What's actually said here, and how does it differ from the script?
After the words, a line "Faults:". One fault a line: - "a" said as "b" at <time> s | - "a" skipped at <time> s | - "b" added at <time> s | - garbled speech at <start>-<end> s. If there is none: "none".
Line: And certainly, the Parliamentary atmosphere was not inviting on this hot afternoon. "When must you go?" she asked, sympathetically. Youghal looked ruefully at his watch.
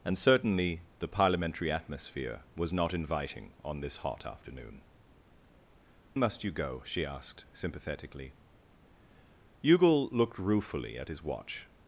And certainly, the Parliamentary atmosphere was not inviting on this hot afternoon. "Must you go?" she asked, sympathetically. Youghal looked ruefully at his watch.
Faults:
- "When" skipped at 4.8 s